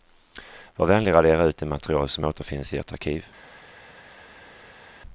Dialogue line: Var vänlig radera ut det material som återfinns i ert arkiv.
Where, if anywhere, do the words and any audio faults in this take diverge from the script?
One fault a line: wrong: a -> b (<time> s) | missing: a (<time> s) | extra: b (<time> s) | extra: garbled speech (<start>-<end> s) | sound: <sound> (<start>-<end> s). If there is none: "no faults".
no faults